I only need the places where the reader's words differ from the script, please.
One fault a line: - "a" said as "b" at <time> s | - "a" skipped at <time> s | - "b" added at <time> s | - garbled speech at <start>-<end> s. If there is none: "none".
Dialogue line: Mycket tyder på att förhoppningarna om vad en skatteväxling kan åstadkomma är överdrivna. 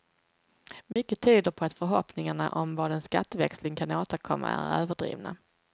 none